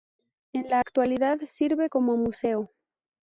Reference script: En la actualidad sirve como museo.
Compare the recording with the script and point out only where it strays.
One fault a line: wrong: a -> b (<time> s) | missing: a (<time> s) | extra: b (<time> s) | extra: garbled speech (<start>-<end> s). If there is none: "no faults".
no faults